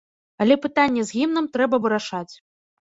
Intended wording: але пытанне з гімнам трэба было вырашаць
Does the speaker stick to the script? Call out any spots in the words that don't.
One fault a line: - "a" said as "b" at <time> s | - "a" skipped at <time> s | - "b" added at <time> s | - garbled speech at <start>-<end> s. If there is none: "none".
- "было" skipped at 1.8 s